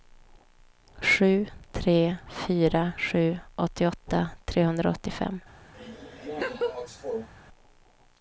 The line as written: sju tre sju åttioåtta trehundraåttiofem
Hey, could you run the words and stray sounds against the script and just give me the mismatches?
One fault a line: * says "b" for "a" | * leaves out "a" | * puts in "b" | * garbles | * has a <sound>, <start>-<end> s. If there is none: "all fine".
* puts in "fyra"
* has a laugh, 5.7-7.3 s